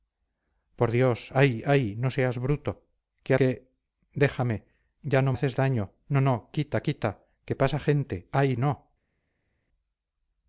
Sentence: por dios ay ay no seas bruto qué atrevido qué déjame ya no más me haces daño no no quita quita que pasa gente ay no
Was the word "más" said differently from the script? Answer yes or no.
yes